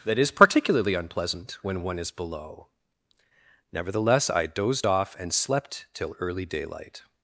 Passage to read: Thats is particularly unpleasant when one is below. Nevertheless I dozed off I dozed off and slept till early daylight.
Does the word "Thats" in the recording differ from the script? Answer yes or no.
yes